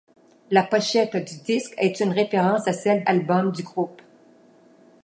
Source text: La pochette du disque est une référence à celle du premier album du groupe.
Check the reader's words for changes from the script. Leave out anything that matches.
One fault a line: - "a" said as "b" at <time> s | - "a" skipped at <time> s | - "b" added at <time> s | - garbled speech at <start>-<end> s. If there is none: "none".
- "du premier" skipped at 3.0 s